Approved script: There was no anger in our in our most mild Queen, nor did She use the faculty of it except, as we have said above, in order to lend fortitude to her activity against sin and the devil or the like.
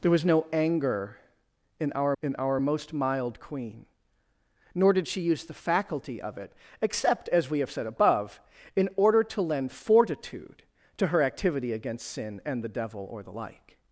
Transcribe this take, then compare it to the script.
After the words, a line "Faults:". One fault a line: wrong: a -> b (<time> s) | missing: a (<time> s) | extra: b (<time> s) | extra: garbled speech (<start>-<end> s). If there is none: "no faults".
There was no anger in our in our most mild Queen, nor did She use the faculty of it except, as we have said above, in order to lend fortitude to her activity against sin and the devil or the like.
Faults:
no faults